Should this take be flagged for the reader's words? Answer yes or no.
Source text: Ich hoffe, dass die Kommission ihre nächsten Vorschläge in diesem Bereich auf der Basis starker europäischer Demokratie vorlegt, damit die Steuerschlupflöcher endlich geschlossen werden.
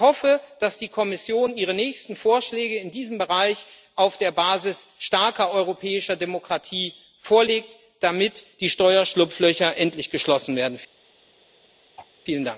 no